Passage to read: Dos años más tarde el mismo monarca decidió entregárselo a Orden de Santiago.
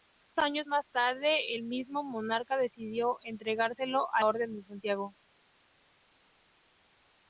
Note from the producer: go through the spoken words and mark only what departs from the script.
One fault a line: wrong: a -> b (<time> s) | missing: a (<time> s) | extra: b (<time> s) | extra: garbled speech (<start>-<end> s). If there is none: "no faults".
no faults